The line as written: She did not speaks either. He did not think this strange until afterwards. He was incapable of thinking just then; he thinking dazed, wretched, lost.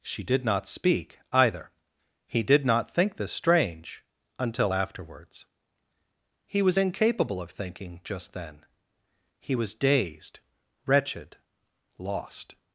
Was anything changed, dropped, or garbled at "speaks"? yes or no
yes